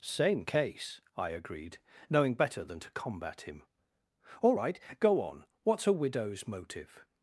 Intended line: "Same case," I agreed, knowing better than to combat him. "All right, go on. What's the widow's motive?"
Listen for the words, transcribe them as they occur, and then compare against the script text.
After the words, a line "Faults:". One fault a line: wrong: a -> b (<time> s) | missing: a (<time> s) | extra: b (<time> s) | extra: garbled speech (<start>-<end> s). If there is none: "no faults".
"Same case," I agreed, knowing better than to combat him. "All right, go on. What's a widow's motive?"
Faults:
wrong: the -> a (5.9 s)